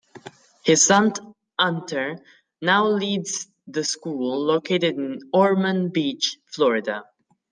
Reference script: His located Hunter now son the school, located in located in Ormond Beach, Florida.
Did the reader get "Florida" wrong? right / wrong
right